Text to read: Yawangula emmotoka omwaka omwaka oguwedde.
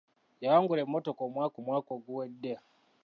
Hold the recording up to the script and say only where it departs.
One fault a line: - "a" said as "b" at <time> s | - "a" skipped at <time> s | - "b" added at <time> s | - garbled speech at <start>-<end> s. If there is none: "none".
none